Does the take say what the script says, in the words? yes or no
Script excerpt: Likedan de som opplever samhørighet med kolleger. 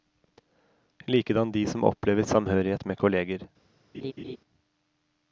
yes